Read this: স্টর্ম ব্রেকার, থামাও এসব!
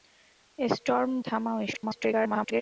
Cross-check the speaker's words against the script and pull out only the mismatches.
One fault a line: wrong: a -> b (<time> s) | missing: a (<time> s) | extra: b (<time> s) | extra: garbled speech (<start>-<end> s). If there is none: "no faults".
missing: ব্রেকার (1.1 s)
extra: garbled speech (1.7-2.6 s)